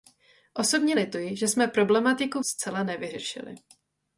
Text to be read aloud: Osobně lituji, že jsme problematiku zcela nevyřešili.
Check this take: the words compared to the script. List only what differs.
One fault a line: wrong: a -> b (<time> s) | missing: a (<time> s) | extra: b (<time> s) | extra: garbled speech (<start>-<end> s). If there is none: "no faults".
no faults